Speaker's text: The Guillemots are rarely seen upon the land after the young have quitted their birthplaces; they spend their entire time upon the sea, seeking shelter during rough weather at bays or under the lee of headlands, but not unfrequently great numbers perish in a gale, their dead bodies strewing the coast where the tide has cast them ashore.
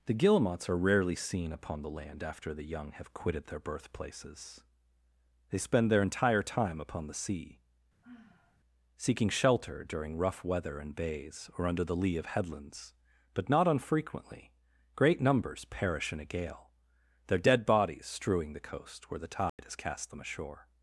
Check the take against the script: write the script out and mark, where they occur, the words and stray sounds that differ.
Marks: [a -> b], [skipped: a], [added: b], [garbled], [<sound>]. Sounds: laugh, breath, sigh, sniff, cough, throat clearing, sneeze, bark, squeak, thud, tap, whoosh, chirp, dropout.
The Guillemots are rarely seen upon the land after the young have quitted their birthplaces; they spend their entire time upon the sea, [sigh] seeking shelter during rough weather [at -> in] bays or under the lee of headlands, but not unfrequently great numbers perish in a gale, their dead bodies strewing the coast where the tide [dropout] has cast them ashore.